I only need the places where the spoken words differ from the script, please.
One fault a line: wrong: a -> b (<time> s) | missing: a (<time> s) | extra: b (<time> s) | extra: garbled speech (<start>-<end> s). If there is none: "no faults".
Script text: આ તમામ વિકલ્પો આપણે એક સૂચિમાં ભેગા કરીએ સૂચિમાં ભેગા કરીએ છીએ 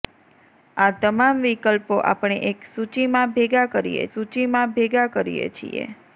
no faults